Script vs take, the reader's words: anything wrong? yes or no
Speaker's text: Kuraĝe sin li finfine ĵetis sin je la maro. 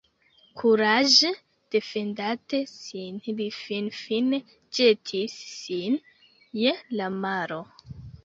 yes